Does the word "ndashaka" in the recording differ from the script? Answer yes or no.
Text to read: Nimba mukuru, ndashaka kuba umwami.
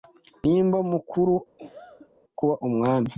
yes